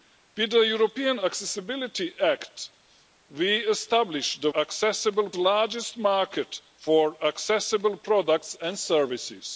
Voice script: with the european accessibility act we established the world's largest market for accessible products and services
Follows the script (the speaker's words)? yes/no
no